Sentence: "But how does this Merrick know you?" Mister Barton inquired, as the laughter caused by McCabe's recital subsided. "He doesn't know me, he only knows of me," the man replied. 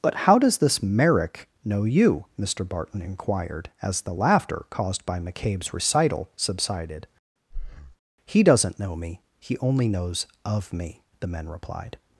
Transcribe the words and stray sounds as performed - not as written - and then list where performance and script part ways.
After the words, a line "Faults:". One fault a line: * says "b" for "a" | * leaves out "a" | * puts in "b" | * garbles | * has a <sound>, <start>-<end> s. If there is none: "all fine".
"But how does this Merrick know you?" Mister Barton inquired, as the laughter caused by McCabe's recital subsided. "He doesn't know me, he only knows of me," the men replied.
Faults:
* has a breath, 7.5-8.0 s
* says "men" for "man"